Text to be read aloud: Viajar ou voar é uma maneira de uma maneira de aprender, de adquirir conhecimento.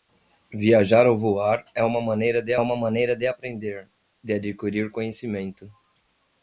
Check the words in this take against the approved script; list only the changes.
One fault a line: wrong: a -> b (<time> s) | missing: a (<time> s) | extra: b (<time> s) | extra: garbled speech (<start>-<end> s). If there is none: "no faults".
no faults